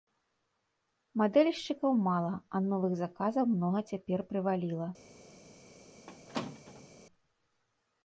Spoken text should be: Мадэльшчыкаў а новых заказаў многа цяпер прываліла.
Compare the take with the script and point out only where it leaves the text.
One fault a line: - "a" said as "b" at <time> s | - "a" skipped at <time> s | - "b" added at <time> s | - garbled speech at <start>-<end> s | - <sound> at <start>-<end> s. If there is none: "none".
- "мала" added at 2.1 s
- squeak at 6.1-6.9 s